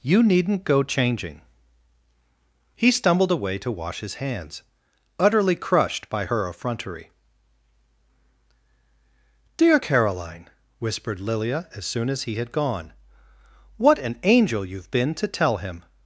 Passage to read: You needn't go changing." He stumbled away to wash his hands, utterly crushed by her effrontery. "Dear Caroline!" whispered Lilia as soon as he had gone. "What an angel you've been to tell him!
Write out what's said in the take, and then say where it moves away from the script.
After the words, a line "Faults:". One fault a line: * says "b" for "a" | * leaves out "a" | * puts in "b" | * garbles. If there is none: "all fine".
You needn't go changing." He stumbled away to wash his hands, utterly crushed by her effrontery. "Dear Caroline!" whispered Lilia as soon as he had gone. "What an angel you've been to tell him!
Faults:
all fine